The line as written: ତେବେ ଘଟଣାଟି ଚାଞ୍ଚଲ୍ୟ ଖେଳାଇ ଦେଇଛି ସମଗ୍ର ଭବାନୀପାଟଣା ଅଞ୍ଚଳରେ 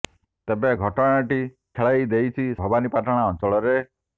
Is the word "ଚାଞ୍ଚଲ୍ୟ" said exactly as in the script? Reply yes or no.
no